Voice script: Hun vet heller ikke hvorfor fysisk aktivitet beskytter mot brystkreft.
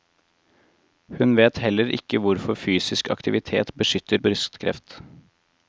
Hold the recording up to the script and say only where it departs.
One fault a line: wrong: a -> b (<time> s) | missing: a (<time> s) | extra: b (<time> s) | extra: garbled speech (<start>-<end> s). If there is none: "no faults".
missing: mot (4.2 s)